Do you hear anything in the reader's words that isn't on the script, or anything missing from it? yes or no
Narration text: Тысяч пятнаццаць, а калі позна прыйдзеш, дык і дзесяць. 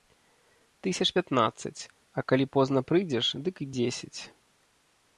no